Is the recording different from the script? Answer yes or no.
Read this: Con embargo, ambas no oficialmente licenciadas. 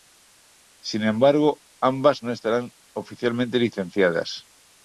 yes